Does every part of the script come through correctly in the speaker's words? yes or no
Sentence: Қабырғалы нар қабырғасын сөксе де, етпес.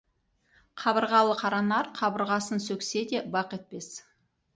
no